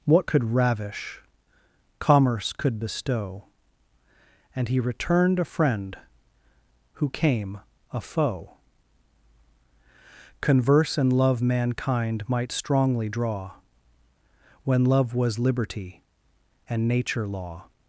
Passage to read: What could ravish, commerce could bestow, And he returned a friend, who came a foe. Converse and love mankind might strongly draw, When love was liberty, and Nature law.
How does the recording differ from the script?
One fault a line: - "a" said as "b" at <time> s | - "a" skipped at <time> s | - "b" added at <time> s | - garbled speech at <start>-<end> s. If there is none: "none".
none